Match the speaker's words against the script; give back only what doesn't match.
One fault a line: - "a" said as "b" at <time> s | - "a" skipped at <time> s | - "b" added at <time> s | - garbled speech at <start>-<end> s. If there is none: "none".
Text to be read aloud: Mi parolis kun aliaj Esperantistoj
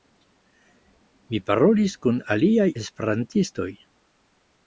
none